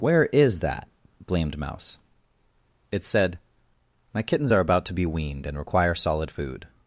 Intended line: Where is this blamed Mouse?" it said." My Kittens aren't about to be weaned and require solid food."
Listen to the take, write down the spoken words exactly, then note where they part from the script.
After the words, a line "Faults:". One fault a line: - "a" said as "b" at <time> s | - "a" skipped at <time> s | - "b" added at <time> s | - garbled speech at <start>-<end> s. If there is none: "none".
Where is that blamed Mouse?" it said." My Kittens are about to be weaned and require solid food."
Faults:
- "this" said as "that" at 0.6 s
- "aren't" said as "are" at 4.5 s